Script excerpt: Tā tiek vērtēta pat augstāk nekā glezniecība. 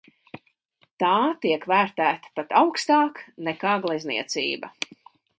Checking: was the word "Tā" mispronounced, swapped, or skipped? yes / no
no